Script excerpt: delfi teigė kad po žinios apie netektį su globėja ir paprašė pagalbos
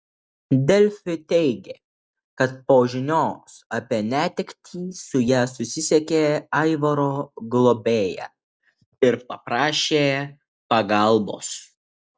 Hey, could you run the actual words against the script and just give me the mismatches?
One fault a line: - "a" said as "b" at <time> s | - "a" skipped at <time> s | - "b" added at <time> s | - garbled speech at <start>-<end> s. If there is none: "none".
- "ja susisiekė aivaro" added at 5.3 s